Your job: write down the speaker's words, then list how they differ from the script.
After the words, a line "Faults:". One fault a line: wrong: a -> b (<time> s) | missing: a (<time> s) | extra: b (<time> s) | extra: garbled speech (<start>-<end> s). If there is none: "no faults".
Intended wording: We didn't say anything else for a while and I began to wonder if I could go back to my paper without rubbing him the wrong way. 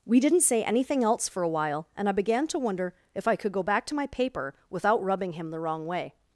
We didn't say anything else for a while and I began to wonder if I could go back to my paper without rubbing him the wrong way.
Faults:
no faults